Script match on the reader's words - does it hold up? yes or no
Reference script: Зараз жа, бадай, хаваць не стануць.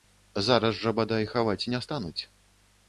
yes